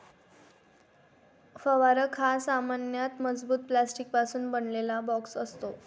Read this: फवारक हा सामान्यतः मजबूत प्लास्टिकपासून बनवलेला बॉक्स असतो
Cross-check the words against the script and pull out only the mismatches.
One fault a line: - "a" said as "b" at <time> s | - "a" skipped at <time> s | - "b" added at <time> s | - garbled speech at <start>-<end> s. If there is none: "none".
none